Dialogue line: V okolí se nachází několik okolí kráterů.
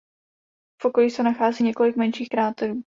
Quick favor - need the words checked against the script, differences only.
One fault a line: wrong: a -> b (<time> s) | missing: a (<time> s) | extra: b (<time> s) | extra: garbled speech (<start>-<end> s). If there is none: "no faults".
wrong: okolí -> menších (2.0 s)